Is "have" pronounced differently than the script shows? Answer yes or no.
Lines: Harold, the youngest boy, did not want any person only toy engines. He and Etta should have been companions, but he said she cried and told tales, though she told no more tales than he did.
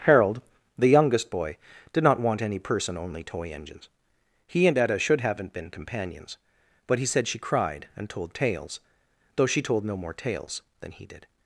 yes